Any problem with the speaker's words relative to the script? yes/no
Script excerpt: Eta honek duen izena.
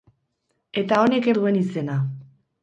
no